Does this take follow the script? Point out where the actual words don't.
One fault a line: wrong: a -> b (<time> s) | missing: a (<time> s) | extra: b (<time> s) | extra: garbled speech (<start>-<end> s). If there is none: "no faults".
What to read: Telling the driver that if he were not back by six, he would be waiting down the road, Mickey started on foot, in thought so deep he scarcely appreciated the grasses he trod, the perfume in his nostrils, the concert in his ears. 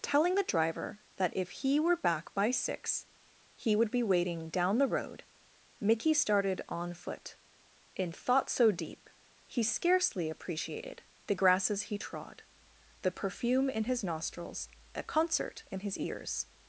missing: not (2.0 s)